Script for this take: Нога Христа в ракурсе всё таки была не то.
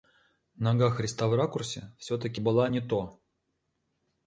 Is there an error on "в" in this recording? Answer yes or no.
no